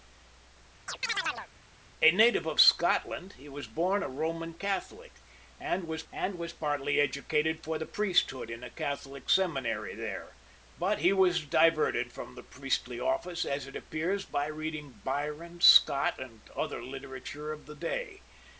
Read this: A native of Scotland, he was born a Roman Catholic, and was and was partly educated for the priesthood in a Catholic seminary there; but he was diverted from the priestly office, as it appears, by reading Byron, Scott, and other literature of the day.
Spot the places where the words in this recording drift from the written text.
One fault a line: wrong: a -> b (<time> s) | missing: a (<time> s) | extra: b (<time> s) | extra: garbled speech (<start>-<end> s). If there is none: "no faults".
no faults